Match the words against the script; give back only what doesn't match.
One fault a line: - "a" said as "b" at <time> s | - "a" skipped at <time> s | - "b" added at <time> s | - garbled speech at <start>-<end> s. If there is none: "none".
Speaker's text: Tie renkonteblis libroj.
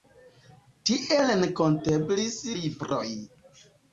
none